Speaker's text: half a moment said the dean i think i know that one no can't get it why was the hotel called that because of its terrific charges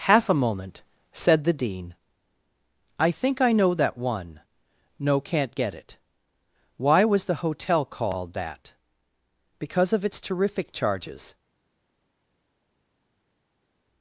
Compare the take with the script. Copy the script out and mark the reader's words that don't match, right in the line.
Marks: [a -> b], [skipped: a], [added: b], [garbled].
half a moment said the dean i think i know that one no can't get it why was the hotel called that because of its terrific charges